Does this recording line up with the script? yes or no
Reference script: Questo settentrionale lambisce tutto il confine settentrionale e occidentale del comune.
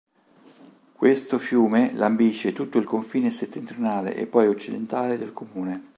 no